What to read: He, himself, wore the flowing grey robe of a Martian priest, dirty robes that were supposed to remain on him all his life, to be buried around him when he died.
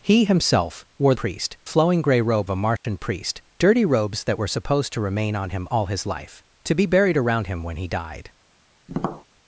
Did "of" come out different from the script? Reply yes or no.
yes